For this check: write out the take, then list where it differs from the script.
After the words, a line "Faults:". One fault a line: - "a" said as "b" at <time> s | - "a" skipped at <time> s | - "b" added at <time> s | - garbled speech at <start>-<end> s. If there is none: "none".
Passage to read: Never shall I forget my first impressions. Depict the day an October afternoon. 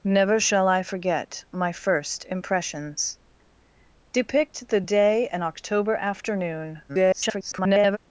Never shall I forget my first impressions. Depict the day an October afternoon. [garbled]
Faults:
- garbled speech at 6.9-8.0 s